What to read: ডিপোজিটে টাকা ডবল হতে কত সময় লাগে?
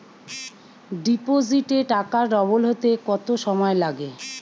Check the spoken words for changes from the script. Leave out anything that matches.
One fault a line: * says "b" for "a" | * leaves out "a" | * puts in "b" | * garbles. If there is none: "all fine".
all fine